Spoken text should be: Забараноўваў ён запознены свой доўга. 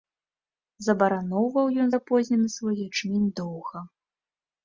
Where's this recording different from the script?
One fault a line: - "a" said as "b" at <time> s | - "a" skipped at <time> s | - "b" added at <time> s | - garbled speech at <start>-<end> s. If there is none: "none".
- "ячмень" added at 2.9 s